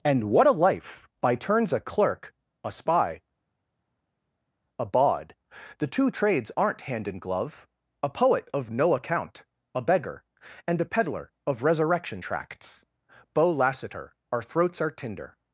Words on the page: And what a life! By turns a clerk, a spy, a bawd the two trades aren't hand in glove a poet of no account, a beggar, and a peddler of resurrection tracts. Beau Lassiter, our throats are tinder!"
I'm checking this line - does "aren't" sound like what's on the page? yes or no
yes